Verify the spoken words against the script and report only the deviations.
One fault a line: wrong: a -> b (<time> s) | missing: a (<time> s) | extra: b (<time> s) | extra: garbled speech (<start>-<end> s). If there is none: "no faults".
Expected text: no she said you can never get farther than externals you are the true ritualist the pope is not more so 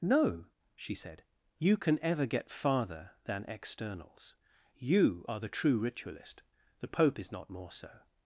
wrong: never -> ever (2.0 s)